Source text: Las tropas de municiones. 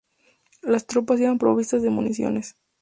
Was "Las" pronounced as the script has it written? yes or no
yes